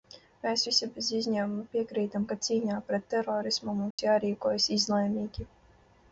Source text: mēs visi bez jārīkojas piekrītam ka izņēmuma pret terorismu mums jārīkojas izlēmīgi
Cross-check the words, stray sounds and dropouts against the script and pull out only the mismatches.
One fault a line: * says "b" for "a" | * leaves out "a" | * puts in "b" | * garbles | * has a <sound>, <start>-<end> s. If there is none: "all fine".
* says "izņēmuma" for "jārīkojas"
* says "cīņā" for "izņēmuma"
* has a dropout, 3.9-4.0 s